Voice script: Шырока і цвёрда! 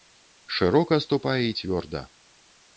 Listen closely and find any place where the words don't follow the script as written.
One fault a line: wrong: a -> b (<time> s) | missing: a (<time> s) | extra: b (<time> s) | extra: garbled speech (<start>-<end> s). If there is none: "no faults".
extra: ступай (1.1 s)